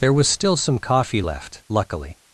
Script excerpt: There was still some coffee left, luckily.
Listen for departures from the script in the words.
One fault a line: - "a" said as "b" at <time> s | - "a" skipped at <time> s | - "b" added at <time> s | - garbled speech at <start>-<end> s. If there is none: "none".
none